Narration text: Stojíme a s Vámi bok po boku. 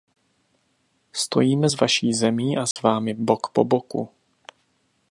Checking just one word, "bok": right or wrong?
right